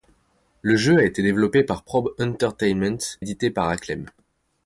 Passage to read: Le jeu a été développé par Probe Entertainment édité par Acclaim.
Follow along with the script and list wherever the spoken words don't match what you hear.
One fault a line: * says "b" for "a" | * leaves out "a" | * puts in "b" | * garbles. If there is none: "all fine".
all fine